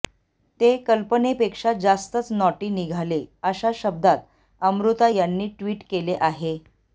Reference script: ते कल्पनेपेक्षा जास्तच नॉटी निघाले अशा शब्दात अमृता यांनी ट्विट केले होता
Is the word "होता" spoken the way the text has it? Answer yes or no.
no